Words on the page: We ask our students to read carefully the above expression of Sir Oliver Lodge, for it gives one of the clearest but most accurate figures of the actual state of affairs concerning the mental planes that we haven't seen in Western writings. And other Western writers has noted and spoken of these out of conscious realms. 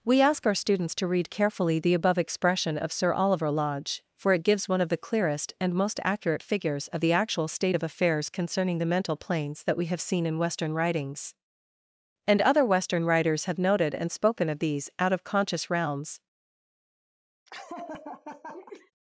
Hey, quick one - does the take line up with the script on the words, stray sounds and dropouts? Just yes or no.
no